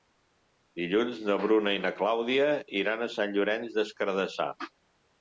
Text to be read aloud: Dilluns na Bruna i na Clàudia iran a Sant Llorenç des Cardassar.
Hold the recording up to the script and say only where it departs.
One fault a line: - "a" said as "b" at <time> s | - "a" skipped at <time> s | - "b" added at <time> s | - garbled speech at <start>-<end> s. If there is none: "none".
none